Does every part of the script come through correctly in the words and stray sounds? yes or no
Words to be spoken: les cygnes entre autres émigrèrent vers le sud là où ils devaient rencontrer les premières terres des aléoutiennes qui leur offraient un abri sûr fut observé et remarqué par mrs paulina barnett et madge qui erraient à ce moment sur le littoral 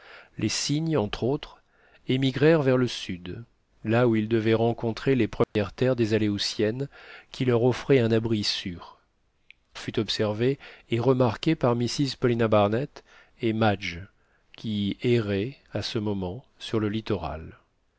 no